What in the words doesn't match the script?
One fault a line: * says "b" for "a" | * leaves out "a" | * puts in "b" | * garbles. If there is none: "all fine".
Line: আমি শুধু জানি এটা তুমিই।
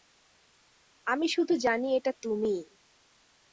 all fine